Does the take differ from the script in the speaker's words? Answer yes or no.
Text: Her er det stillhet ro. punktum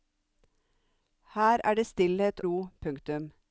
no